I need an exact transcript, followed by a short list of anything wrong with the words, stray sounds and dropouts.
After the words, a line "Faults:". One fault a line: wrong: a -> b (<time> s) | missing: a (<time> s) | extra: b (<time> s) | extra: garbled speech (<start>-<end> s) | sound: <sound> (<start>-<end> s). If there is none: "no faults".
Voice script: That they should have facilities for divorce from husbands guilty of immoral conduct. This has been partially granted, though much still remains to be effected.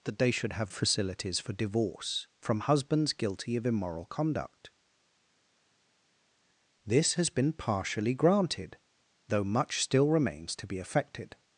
That they should have facilities for divorce from husbands guilty of immoral conduct. This has been partially granted, though much still remains to be effected.
Faults:
no faults